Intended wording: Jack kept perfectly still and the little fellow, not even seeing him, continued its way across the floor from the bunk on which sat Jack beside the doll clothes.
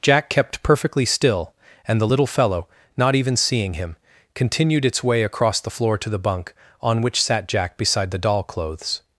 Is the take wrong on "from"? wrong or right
wrong